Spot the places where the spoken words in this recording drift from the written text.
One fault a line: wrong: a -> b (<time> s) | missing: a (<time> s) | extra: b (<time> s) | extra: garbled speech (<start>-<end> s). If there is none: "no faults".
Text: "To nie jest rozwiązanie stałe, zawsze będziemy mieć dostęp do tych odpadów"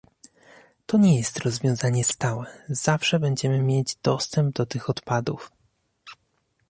no faults